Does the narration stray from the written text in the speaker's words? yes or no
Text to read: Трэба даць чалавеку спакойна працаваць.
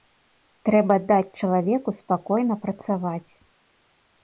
no